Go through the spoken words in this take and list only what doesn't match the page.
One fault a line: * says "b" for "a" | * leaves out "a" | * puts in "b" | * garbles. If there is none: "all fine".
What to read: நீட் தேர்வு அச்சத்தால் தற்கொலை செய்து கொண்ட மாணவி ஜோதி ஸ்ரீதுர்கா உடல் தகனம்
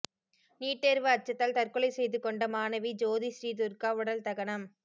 all fine